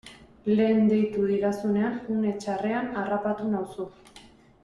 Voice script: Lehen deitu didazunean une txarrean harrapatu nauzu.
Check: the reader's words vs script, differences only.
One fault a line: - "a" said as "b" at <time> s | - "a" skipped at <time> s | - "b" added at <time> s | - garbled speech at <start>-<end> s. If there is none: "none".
none